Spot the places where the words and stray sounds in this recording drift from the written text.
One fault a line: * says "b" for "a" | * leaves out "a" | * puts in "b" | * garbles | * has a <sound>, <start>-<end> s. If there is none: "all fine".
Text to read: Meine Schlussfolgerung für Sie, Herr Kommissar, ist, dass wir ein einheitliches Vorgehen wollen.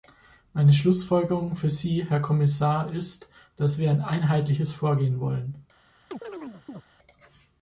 * has a chirp, 6.1-6.8 s